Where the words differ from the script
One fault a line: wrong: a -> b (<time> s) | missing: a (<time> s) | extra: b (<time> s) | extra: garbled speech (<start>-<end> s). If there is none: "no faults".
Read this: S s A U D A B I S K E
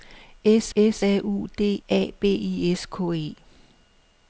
no faults